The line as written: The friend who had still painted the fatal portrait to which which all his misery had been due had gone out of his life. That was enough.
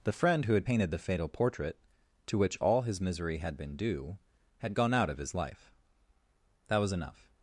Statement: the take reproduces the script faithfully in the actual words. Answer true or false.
false